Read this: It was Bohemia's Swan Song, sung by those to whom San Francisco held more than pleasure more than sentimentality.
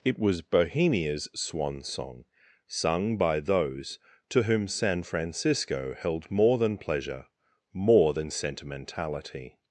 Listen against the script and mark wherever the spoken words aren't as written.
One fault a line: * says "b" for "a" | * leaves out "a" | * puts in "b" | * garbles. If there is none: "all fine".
all fine